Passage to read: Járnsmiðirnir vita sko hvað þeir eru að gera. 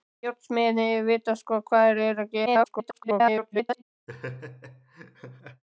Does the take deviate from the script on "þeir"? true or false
false